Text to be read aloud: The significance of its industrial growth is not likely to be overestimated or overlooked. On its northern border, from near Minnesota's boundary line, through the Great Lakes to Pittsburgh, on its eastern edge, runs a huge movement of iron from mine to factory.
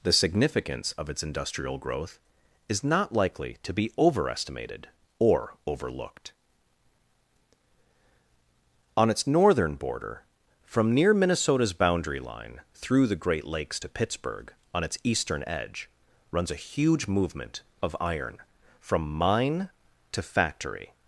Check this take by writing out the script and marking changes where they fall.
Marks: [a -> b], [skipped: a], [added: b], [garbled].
The significance of its industrial growth is not likely to be overestimated or overlooked. On its northern border, from near Minnesota's boundary line, through the Great Lakes to Pittsburgh, on its eastern edge, runs a huge movement of iron from mine to factory.